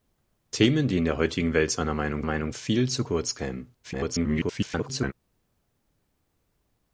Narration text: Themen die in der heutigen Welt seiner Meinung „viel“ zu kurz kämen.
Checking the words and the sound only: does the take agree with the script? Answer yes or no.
no